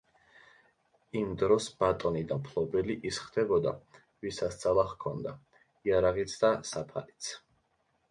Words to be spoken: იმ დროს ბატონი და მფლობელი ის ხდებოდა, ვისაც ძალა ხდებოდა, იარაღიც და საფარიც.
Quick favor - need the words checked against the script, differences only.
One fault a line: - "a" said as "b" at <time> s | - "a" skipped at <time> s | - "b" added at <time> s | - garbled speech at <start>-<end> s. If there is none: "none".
- "ხდებოდა" said as "ჰქონდა" at 4.9 s